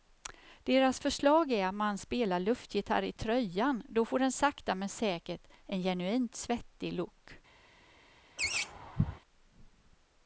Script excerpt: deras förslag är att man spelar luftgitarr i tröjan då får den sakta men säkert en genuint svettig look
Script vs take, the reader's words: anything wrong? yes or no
no